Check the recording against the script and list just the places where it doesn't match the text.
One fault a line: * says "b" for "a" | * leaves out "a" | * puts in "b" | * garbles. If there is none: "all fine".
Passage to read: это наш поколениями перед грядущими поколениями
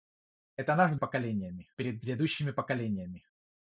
all fine